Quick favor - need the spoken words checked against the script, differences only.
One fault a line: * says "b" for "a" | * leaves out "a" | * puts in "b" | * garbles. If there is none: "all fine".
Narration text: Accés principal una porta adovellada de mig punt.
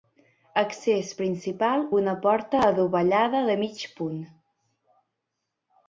all fine